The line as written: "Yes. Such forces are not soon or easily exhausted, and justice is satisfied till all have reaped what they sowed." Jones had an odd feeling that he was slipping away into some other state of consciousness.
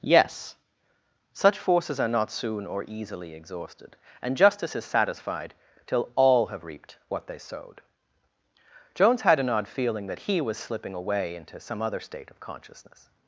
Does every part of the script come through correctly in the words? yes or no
yes